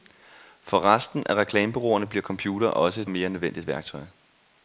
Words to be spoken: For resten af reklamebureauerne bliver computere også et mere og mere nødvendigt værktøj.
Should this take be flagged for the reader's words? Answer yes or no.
yes